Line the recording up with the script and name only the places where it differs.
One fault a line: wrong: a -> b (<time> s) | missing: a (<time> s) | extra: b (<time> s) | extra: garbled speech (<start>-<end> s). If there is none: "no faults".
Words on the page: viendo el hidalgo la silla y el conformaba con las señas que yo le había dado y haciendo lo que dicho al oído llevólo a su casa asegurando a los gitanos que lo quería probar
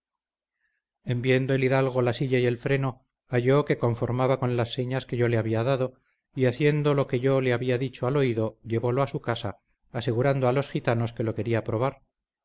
extra: freno halló que (2.6 s)
extra: yo le había (7.2 s)